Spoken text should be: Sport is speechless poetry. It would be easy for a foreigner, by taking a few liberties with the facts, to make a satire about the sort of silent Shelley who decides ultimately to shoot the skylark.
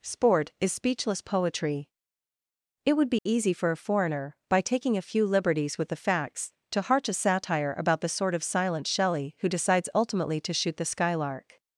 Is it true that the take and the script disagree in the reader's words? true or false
true